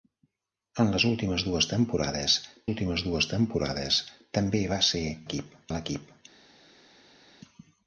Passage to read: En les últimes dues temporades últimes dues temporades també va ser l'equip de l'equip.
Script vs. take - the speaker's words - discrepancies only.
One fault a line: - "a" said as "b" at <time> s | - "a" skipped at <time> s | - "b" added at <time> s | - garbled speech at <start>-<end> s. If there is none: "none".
none